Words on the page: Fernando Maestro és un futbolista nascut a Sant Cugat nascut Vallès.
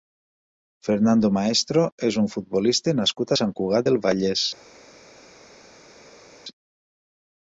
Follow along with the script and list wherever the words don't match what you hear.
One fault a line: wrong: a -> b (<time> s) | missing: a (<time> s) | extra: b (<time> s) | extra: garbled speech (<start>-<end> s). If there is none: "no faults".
wrong: nascut -> del (3.9 s)